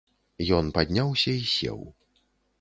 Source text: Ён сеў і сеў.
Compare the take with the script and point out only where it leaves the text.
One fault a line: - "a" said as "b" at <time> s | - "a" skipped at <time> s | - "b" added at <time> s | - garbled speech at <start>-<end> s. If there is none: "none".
- "сеў" said as "падняўся" at 0.8 s